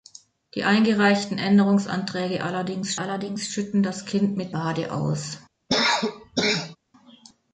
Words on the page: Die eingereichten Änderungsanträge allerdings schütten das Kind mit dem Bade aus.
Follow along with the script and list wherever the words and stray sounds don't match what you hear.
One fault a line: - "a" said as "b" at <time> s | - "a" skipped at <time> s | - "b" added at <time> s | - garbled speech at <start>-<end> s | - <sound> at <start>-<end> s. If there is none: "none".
- "allerdings" added at 3.0 s
- "dem" skipped at 4.5 s
- cough at 5.7-6.8 s